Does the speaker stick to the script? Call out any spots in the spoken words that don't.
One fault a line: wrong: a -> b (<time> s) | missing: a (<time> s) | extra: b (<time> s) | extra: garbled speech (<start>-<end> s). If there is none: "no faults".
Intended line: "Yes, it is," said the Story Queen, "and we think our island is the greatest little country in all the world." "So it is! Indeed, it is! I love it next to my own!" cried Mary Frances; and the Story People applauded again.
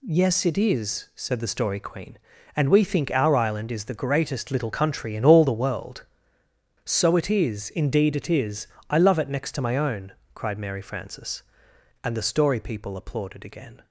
no faults